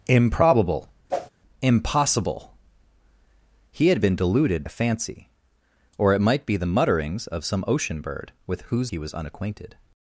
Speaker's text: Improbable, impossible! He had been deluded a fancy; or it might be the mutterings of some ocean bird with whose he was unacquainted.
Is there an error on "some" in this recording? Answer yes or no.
no